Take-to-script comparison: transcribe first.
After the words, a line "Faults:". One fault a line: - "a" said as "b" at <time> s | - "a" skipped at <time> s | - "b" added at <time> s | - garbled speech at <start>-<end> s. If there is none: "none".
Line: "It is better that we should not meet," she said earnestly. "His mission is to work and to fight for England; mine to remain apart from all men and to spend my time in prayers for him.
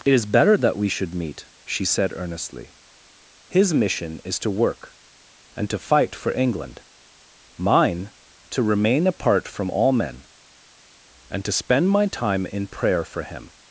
"It is better that we should meet," she said earnestly. "His mission is to work and to fight for England; mine to remain apart from all men and to spend my time in prayer for him.
Faults:
- "not" skipped at 1.1 s
- "prayers" said as "prayer" at 12.7 s